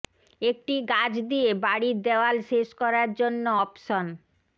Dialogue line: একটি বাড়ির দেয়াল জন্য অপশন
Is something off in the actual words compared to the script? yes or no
yes